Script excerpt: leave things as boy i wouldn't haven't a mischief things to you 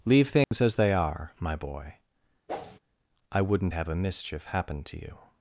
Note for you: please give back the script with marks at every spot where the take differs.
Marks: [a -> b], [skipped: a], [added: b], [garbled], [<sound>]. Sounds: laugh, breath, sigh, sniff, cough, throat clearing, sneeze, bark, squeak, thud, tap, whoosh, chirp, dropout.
leave things [dropout] as [added: they are my] boy [whoosh] i wouldn't [haven't -> have] a mischief [things -> happen] to you